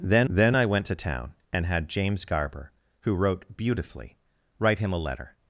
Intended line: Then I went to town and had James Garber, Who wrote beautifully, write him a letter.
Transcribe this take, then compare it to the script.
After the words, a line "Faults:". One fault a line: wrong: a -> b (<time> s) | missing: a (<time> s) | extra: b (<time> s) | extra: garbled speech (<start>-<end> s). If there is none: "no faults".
Then then I went to town and had James Garber, Who wrote beautifully, write him a letter.
Faults:
extra: then (0.3 s)